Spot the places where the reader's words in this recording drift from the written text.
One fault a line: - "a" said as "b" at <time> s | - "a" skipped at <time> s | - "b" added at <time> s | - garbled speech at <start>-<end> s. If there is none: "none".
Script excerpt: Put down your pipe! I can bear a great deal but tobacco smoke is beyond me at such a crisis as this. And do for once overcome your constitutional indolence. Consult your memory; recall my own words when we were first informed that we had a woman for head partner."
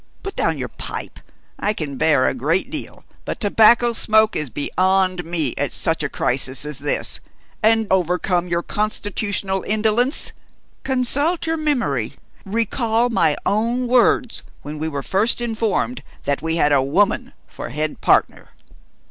- "do for once" skipped at 7.9 s